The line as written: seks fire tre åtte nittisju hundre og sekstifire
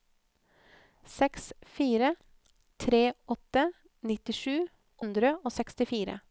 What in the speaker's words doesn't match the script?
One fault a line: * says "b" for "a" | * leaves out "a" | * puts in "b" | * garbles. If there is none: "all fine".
all fine